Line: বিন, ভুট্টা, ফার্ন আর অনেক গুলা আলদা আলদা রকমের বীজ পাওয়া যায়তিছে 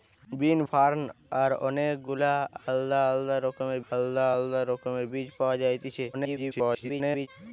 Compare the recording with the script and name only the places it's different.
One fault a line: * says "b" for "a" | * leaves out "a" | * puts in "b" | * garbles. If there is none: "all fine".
* leaves out "ভুট্টা"
* puts in "আলদা আলদা রকমের"
* garbles